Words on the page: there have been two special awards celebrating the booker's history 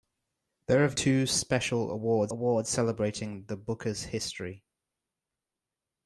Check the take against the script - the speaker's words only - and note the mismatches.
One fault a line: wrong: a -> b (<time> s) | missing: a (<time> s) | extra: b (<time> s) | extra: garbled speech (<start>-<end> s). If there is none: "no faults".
missing: been (1.0 s)
extra: awards (2.3 s)